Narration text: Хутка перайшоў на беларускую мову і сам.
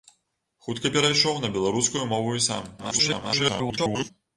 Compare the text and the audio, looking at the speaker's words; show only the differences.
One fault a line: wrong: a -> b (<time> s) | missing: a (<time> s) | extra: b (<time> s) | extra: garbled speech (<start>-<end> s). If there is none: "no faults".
extra: garbled speech (2.8-4.1 s)